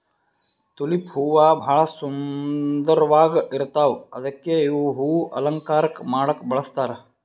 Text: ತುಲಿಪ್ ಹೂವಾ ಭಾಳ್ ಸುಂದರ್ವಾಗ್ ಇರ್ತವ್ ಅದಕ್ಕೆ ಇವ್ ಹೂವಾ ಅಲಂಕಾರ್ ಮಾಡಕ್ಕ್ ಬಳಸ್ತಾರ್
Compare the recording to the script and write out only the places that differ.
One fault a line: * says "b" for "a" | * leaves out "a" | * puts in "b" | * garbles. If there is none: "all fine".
all fine